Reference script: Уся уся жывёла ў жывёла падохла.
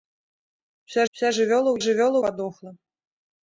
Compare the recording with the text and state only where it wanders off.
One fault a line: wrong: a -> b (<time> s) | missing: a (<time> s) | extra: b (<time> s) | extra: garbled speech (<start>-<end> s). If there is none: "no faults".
no faults